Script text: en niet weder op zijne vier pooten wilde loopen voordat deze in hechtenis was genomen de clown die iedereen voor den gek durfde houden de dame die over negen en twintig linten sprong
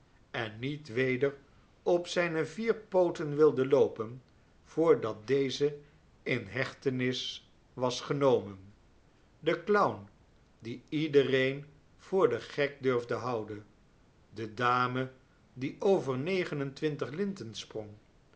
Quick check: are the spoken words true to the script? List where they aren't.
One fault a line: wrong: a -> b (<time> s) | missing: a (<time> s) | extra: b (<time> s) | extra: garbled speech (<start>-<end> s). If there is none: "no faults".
no faults